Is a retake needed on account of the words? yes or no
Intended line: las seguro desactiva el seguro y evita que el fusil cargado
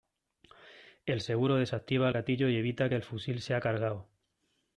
yes